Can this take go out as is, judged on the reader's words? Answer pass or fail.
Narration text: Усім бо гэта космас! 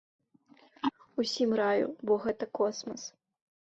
fail